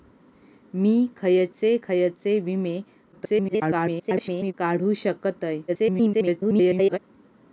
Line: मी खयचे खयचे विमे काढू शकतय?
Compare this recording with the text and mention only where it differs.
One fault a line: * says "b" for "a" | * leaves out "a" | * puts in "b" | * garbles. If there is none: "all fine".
* garbles
* garbles